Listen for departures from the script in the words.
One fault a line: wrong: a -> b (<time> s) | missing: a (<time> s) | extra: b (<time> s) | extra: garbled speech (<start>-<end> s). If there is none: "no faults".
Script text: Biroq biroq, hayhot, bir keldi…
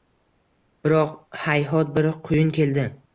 missing: biroq (1.1 s)
extra: quyun (2.3 s)